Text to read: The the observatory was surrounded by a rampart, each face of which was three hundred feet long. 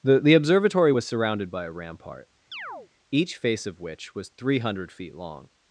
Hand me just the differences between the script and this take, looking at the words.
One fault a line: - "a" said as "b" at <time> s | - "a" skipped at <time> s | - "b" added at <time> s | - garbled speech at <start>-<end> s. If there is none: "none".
none